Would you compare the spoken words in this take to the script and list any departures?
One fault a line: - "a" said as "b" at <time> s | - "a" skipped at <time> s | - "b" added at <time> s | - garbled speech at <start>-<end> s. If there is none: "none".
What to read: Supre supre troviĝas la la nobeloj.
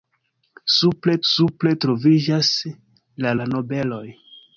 none